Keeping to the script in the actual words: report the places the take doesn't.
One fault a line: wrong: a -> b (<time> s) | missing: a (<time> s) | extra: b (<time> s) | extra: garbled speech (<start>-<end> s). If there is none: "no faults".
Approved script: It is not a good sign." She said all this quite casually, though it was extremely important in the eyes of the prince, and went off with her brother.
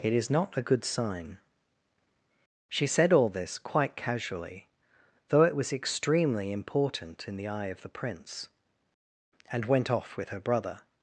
wrong: eyes -> eye (7.5 s)